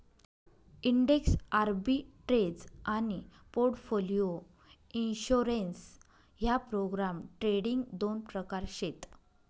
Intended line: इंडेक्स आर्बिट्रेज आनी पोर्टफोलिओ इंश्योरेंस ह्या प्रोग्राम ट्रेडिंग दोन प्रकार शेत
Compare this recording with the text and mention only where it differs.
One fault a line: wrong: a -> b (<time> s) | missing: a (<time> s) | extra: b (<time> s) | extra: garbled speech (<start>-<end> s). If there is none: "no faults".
no faults